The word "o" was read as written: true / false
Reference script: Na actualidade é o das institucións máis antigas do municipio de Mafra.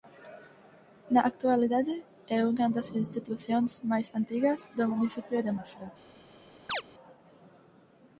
false